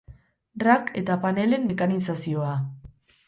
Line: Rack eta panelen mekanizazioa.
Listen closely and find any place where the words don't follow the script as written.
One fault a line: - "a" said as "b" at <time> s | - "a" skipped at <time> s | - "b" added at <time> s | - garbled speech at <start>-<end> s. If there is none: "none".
none